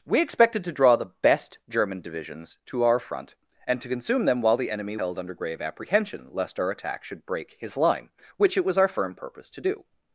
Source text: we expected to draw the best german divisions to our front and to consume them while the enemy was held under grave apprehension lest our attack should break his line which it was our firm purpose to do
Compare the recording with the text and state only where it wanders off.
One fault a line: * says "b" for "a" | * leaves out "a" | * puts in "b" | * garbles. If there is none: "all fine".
* leaves out "was"